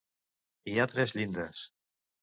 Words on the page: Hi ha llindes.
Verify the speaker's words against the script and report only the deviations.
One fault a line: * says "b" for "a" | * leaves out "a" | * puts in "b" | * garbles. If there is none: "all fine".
* puts in "tres"